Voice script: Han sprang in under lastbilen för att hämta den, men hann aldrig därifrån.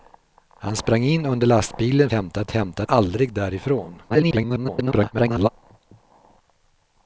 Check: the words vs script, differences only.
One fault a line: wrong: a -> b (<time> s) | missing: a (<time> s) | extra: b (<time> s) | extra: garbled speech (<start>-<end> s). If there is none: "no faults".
wrong: för -> hämta (2.1 s)
missing: den men hann (2.8 s)
extra: garbled speech (4.1-5.5 s)